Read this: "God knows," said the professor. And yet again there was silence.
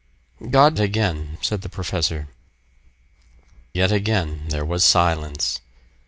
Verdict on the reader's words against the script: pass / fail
fail